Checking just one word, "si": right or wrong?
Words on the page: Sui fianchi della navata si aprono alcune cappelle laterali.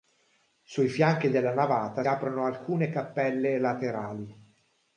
wrong